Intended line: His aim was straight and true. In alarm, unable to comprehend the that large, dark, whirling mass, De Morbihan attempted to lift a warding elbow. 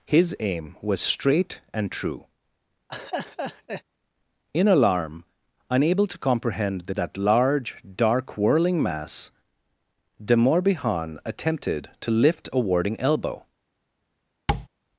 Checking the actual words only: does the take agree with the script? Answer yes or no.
yes